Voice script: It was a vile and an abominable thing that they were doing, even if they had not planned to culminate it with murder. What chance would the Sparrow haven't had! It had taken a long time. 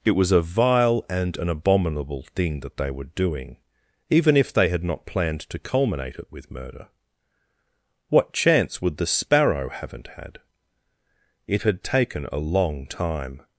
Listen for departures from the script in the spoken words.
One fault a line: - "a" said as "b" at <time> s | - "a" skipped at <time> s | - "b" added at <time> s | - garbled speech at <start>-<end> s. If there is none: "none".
none